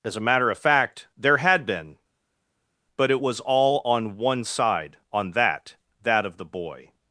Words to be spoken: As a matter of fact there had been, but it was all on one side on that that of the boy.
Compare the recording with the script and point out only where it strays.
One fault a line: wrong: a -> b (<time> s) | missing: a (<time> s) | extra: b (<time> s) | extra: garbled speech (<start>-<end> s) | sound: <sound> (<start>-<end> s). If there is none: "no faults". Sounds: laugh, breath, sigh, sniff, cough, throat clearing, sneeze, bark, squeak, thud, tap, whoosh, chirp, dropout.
no faults